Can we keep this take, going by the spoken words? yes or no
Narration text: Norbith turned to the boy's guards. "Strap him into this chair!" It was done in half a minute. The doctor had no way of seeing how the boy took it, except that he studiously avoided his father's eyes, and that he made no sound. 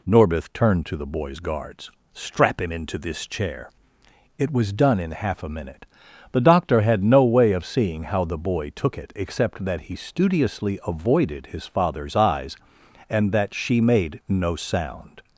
no